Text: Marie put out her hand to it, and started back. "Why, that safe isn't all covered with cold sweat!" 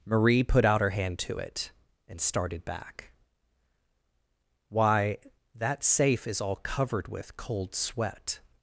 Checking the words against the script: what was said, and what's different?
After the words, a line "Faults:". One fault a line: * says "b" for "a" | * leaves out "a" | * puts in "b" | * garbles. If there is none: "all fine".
Marie put out her hand to it, and started back. "Why, that safe is all covered with cold sweat!"
Faults:
* says "is" for "isn't"